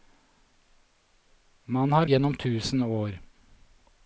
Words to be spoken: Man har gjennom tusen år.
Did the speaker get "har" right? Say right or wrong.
right